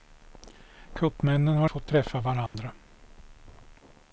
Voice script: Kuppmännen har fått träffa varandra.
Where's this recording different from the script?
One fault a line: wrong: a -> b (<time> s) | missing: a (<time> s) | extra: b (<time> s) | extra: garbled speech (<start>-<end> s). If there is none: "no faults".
no faults